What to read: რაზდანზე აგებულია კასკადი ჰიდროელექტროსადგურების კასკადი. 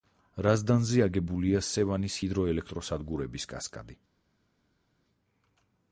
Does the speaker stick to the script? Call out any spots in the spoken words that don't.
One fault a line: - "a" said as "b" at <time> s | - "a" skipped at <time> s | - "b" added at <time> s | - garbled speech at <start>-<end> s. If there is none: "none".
- "კასკადი" said as "სევანის" at 1.7 s